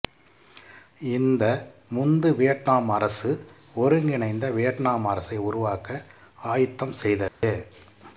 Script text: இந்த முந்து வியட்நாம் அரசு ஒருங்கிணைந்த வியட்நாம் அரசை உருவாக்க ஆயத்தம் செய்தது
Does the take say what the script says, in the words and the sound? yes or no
no